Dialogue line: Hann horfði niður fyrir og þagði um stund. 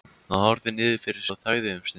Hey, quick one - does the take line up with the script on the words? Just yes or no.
yes